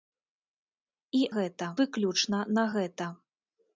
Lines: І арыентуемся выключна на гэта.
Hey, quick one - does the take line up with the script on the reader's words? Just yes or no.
no